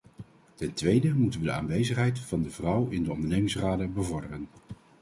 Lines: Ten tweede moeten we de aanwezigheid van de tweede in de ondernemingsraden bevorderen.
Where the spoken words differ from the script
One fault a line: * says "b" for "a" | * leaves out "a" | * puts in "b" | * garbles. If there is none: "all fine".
* says "vrouw" for "tweede"